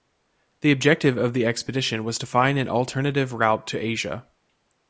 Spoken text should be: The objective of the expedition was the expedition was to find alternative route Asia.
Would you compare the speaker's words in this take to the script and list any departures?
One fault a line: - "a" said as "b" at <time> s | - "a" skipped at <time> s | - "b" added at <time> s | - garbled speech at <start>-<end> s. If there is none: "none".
- "the expedition was" skipped at 2.2 s
- "an" added at 2.6 s
- "to" added at 3.7 s